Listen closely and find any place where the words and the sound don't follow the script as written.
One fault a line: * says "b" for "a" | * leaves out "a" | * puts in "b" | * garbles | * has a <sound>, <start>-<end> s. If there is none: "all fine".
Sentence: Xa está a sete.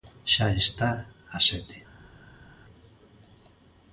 all fine